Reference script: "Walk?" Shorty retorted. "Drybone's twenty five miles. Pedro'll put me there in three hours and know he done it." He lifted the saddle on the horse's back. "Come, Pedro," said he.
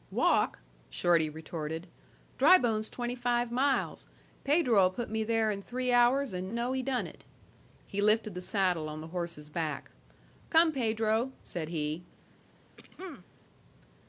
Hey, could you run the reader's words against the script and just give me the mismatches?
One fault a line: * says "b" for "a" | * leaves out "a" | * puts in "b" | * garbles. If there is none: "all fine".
all fine